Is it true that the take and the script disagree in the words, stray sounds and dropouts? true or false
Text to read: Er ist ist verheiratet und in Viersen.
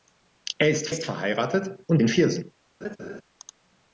true